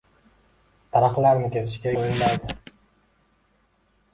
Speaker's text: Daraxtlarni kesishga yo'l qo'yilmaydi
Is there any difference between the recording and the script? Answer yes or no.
yes